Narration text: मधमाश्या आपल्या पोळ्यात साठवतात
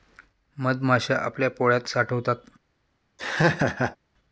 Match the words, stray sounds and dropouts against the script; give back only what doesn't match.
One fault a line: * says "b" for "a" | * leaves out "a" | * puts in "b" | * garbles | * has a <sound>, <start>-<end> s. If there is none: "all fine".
* has a laugh, 3.2-4.0 s